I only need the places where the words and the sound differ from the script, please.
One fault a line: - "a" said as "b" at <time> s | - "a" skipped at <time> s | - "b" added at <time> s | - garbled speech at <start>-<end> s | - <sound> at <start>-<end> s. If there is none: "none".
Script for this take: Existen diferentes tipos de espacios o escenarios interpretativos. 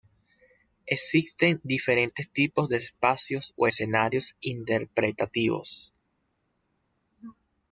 none